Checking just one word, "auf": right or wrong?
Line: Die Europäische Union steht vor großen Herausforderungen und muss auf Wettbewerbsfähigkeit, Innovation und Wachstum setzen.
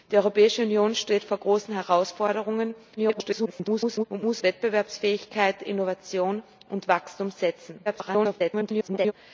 wrong